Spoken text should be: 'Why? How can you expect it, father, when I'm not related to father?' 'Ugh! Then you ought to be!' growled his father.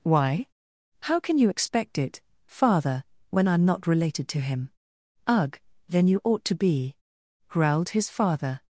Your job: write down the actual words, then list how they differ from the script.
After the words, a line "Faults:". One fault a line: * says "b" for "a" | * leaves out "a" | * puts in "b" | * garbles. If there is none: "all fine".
'Why? How can you expect it, father, when I'm not related to him?' 'Ugh! Then you ought to be!' growled his father.
Faults:
* says "him" for "father"